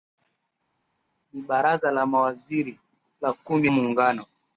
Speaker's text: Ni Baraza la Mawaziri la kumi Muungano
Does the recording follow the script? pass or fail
pass